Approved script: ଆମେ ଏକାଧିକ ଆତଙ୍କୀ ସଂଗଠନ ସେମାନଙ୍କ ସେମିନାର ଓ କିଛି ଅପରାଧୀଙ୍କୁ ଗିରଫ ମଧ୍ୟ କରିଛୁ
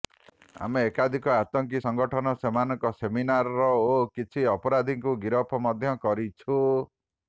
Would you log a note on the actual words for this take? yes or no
no